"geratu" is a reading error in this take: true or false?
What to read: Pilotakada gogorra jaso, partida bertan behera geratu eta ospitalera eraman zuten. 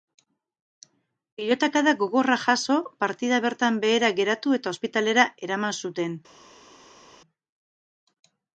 false